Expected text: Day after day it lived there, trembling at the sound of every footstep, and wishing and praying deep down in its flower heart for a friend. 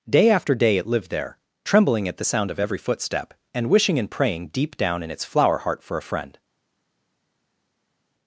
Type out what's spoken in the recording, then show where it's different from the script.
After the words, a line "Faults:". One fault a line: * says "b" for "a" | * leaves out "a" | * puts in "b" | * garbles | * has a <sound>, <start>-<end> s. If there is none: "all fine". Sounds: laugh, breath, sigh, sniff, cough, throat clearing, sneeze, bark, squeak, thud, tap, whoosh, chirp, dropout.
Day after day it lived there, trembling at the sound of every footstep, and wishing and praying deep down in its flower heart for a friend.
Faults:
all fine